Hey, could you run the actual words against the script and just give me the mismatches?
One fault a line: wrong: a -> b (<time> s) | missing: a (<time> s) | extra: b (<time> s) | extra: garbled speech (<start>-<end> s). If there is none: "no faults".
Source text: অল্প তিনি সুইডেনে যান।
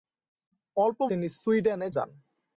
no faults